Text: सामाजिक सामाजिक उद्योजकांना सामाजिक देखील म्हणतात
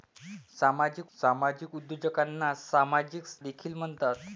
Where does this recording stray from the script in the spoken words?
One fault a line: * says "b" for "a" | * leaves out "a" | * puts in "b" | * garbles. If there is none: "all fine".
all fine